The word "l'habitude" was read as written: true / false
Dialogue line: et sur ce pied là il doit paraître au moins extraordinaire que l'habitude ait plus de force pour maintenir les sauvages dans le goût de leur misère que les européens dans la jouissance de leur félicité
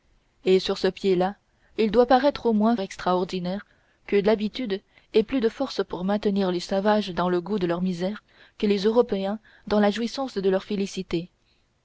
true